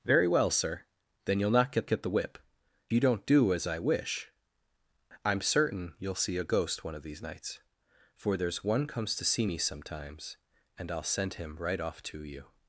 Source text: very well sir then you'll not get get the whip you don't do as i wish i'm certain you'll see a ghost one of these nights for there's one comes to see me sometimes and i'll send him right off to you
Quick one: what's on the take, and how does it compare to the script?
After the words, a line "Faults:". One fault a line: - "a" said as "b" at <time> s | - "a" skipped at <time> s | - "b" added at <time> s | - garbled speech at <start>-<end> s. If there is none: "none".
very well sir then you'll not get get the whip you don't do as i wish i'm certain you'll see a ghost one of these nights for there's one comes to see me sometimes and i'll send him right off to you
Faults:
none